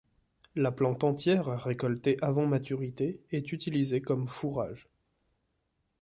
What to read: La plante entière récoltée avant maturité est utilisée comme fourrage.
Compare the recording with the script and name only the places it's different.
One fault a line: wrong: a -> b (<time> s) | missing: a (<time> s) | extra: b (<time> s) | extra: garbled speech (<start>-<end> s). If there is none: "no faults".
no faults